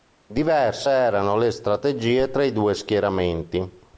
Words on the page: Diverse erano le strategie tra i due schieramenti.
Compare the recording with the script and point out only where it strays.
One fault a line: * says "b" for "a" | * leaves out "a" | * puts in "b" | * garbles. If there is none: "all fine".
all fine